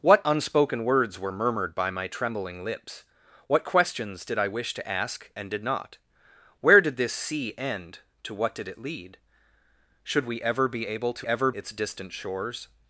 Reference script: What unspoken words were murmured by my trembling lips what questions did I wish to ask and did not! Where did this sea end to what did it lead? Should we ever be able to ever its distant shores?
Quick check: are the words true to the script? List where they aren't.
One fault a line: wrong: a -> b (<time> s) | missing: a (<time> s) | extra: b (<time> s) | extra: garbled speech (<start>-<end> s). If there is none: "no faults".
no faults